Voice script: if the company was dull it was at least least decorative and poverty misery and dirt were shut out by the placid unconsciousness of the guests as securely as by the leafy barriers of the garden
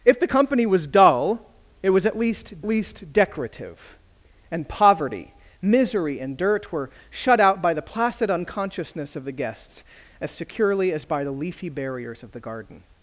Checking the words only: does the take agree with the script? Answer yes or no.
yes